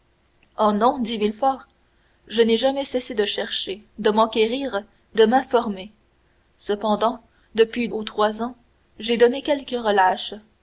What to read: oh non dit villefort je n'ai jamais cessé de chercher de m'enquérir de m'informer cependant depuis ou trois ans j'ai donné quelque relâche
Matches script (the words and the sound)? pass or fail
pass